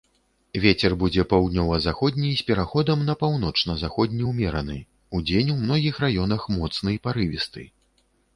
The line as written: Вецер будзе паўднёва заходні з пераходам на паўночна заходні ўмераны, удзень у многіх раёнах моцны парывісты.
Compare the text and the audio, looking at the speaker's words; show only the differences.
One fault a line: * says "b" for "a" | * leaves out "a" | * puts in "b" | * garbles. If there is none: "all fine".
all fine